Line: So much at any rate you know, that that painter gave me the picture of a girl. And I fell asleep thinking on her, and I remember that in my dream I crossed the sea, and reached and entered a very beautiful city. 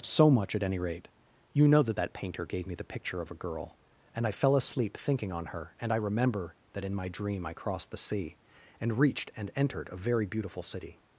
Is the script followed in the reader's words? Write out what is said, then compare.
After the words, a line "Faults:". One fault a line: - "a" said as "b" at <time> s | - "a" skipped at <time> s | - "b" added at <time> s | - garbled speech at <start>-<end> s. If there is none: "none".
So much at any rate you know, that that painter gave me the picture of a girl. And I fell asleep thinking on her, and I remember that in my dream I crossed the sea, and reached and entered a very beautiful city.
Faults:
none